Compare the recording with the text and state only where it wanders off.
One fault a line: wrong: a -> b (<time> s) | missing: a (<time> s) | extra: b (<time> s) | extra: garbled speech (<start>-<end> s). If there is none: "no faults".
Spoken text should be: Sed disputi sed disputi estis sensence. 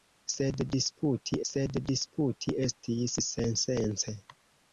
no faults